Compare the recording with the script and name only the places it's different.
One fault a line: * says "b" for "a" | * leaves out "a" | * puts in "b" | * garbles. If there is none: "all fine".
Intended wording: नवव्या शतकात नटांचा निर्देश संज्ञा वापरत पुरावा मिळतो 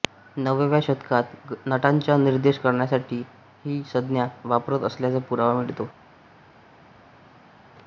* puts in "करण्यासाठी ही"
* puts in "असल्याचा"